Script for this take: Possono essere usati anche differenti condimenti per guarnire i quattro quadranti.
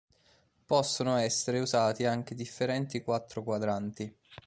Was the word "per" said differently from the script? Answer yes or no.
yes